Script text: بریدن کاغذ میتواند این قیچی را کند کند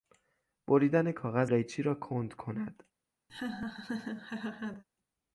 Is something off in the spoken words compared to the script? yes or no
yes